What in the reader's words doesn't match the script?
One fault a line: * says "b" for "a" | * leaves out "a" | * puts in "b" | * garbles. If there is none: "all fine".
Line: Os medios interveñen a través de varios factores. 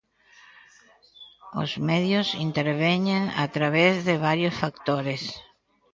all fine